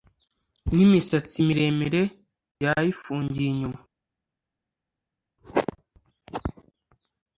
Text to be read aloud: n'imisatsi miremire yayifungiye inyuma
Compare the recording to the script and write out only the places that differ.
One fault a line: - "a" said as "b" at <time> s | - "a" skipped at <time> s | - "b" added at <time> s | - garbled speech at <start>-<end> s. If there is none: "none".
none